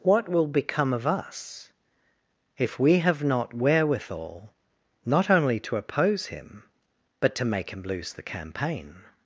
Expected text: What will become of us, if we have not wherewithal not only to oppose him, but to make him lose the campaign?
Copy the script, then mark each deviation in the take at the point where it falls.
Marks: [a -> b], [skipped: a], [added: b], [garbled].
What will become of us, if we have not wherewithal not only to oppose him, but to make him lose the campaign?